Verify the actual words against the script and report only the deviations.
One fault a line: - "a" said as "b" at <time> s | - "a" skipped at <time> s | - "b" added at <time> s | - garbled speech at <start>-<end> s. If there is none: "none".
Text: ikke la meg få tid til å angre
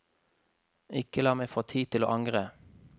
none